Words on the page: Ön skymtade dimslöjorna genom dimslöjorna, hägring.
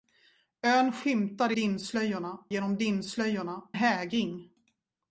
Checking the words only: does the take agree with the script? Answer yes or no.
yes